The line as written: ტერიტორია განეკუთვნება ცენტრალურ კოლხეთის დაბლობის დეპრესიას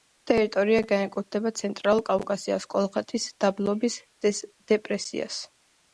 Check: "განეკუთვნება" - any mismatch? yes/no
no